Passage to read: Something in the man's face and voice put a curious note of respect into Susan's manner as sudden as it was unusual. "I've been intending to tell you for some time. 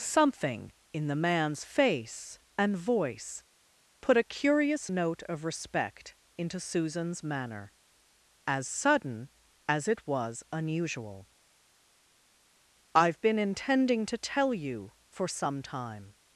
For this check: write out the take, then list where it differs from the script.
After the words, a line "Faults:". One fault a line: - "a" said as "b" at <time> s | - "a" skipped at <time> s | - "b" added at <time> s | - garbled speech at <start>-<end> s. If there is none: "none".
Something in the man's face and voice put a curious note of respect into Susan's manner as sudden as it was unusual. "I've been intending to tell you for some time.
Faults:
none